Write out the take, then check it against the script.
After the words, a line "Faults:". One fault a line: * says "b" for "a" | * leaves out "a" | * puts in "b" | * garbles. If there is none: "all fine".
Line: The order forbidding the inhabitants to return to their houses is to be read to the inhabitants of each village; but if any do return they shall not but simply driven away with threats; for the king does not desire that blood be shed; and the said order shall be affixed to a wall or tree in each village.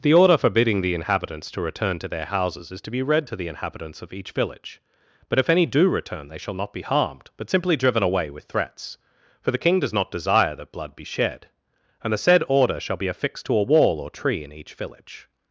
The order forbidding the inhabitants to return to their houses is to be read to the inhabitants of each village; but if any do return they shall not be harmed, but simply driven away with threats; for the king does not desire that blood be shed; and the said order shall be affixed to a wall or tree in each village.
Faults:
* puts in "be harmed"